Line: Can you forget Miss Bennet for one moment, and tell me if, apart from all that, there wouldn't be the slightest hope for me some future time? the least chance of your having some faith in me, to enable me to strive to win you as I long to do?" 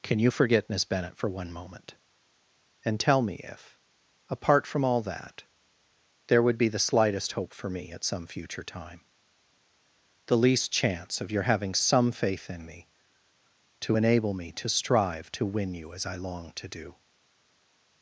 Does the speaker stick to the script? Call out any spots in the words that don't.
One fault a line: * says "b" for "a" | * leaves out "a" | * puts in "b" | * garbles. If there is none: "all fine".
* says "would" for "wouldn't"
* puts in "at"